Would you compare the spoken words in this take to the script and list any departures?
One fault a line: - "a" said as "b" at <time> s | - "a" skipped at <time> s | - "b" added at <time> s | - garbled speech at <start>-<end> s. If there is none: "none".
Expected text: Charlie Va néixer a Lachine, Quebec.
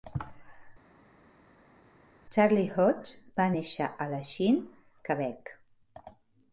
- "Hodge" added at 2.8 s